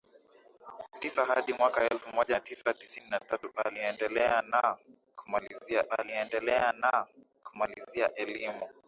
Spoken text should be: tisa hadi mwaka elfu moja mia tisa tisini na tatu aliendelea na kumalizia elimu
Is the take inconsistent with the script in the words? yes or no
yes